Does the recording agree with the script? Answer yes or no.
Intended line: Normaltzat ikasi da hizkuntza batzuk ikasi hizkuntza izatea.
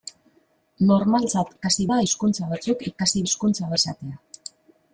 yes